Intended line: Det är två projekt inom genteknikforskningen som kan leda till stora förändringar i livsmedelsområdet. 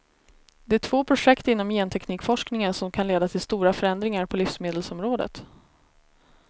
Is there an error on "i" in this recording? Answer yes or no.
yes